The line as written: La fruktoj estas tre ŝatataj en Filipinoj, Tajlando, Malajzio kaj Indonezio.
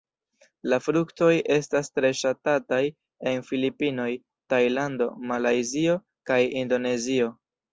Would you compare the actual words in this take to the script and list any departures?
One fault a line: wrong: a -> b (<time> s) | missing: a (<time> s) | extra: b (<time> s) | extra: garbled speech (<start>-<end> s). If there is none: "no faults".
no faults